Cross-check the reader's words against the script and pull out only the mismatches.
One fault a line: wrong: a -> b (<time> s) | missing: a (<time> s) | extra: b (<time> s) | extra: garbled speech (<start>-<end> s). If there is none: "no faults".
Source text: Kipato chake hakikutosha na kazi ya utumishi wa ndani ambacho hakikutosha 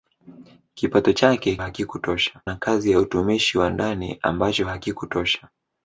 no faults